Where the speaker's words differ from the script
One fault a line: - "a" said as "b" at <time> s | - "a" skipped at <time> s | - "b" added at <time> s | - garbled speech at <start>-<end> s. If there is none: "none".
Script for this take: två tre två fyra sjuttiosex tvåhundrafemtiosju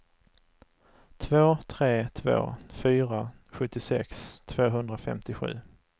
none